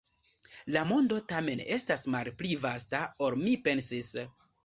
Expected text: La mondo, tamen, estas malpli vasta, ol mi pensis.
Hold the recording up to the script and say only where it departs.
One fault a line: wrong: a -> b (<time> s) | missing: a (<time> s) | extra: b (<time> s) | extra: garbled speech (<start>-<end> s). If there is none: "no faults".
no faults